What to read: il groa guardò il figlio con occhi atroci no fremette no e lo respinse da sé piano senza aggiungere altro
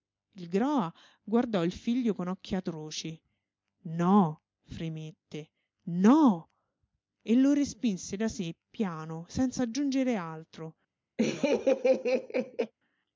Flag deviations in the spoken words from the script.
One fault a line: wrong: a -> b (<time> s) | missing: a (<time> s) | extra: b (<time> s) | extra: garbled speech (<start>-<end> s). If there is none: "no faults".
no faults